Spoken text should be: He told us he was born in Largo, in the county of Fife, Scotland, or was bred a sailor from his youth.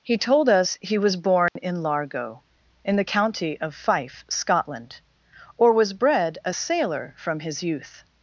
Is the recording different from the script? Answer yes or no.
no